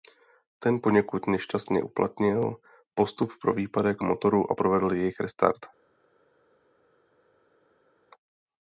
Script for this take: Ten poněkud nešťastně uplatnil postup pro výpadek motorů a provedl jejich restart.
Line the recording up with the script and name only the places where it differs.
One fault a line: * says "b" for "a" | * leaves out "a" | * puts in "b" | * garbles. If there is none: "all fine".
all fine